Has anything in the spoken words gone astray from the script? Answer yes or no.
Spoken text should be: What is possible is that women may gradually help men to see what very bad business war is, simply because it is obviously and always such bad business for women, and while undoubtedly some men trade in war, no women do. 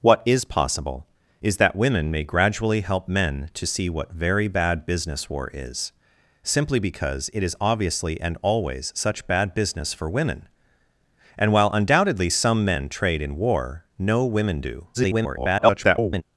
yes